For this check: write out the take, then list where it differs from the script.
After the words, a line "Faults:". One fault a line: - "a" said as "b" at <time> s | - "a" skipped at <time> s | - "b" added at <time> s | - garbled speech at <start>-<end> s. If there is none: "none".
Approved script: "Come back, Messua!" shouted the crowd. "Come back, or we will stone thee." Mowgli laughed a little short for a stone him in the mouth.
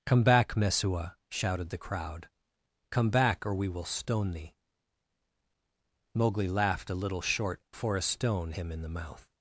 "Come back, Messua!" shouted the crowd. "Come back, or we will stone thee." Mowgli laughed a little short for a stone him in the mouth.
Faults:
none